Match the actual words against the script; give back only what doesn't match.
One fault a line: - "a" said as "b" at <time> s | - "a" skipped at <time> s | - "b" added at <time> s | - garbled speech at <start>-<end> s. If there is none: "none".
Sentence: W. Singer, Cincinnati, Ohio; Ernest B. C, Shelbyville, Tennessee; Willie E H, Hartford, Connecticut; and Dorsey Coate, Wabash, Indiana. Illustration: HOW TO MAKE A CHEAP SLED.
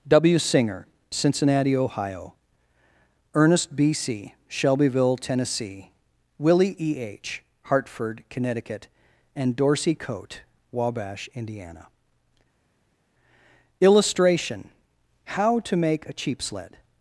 none